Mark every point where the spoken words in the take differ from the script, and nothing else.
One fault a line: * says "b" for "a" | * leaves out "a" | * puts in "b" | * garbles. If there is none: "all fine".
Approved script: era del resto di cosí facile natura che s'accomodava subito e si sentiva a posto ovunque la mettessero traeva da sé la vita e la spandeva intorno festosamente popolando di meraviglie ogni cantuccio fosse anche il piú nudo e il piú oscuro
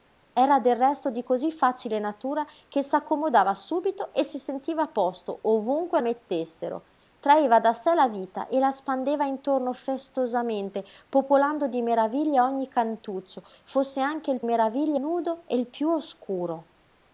* leaves out "la"
* says "meraviglie" for "piú"